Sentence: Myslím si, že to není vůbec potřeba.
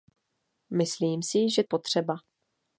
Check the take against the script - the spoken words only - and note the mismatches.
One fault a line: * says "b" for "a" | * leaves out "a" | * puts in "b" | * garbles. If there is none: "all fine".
* leaves out "to není vůbec"